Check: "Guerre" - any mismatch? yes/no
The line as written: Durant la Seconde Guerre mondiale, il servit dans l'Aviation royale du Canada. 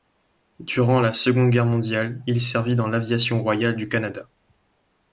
no